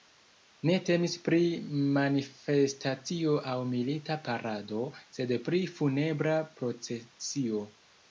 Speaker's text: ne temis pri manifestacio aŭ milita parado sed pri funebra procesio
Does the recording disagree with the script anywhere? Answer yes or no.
no